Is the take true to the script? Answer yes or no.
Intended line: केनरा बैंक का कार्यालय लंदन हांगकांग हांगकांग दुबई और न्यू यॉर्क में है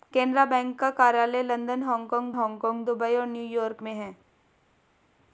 yes